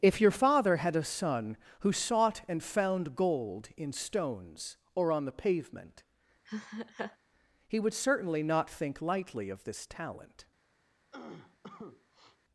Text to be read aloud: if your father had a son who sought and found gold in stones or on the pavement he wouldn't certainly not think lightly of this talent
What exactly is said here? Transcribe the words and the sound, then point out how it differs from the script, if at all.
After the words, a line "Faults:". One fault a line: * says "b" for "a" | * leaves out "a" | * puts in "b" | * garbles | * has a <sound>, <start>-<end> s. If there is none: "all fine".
if your father had a son who sought and found gold in stones or on the pavement he would certainly not think lightly of this talent
Faults:
* has a laugh, 6.5-7.2 s
* says "would" for "wouldn't"
* has a cough, 11.1-12.4 s